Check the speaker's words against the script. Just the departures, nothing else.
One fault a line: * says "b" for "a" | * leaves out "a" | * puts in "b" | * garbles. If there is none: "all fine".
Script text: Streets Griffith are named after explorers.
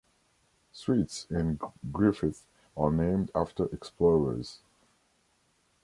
* puts in "in"